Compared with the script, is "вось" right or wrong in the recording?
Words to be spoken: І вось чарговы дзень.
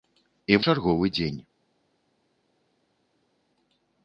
wrong